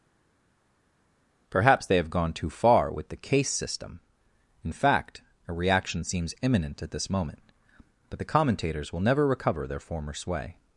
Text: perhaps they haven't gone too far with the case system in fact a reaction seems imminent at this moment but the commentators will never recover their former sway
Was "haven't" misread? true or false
true